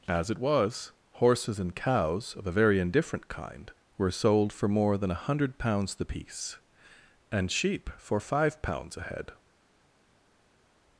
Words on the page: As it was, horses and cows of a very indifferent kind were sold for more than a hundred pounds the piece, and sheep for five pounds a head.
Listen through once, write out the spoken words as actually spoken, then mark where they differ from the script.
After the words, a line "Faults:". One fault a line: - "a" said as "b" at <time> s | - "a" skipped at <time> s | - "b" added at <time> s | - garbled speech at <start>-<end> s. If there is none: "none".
As it was, horses and cows of a very indifferent kind were sold for more than a hundred pounds the piece, and sheep for five pounds a head.
Faults:
none